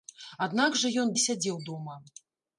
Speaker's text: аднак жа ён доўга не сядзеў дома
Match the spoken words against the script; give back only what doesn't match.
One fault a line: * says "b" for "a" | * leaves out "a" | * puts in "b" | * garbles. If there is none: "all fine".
* leaves out "доўга"